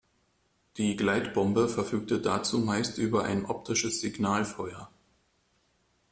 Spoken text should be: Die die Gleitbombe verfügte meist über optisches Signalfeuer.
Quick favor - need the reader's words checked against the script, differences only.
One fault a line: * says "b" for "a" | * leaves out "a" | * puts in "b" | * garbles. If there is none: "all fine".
* leaves out "die"
* puts in "dazu"
* puts in "ein"